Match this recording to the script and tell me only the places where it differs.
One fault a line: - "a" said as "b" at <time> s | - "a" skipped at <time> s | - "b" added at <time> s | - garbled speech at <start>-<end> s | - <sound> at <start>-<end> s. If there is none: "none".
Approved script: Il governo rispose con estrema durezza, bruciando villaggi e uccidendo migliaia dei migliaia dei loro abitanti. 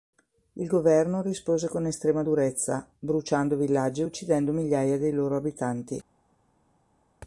- "migliaia dei" skipped at 5.1 s